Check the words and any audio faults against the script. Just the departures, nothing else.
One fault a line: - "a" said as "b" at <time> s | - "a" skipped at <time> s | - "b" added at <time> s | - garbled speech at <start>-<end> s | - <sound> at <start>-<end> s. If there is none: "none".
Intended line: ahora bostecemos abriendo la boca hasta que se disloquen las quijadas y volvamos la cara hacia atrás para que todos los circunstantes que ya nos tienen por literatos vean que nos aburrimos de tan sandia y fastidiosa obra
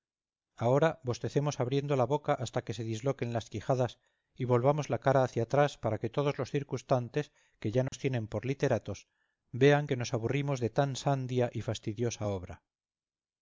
- dropout at 7.9-7.9 s